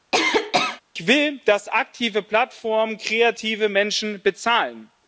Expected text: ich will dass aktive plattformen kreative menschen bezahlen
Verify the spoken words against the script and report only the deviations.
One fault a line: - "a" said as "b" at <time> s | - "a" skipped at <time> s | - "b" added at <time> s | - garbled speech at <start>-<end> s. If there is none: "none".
none